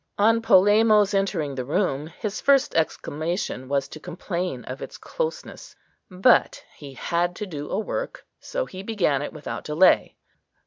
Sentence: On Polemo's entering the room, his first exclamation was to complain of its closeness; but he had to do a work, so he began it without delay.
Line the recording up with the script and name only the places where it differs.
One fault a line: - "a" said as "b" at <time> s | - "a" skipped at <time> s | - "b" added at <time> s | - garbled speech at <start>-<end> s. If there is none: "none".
none